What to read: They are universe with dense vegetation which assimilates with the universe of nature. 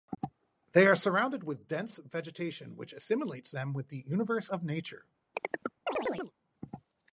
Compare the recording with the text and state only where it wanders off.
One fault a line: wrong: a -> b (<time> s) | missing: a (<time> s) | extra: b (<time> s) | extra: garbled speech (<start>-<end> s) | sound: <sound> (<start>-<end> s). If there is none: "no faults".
wrong: universe -> surrounded (0.9 s)
extra: them (3.5 s)
sound: chirp (5.3-6.3 s)